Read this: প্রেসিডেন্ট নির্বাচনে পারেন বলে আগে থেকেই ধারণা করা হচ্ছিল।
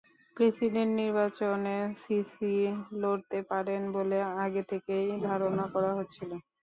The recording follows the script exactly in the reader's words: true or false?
false